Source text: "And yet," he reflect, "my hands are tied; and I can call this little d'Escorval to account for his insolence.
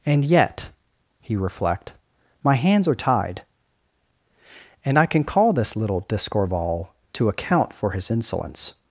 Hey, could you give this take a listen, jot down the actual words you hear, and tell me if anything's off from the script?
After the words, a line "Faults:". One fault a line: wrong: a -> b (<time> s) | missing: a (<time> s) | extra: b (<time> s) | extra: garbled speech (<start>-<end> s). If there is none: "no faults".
"And yet," he reflect, "my hands are tied; and I can call this little d'Escorval to account for his insolence.
Faults:
no faults